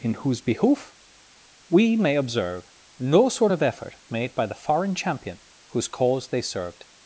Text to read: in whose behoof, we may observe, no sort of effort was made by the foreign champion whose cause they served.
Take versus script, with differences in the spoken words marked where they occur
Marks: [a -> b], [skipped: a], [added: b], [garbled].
in whose behoof, we may observe, no sort of effort [skipped: was] made by the foreign champion whose cause they served.